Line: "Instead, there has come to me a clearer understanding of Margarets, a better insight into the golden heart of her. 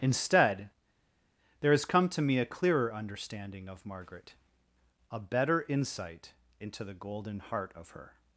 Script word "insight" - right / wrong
right